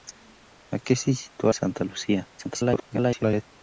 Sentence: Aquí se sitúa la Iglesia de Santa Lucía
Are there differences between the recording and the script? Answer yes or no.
yes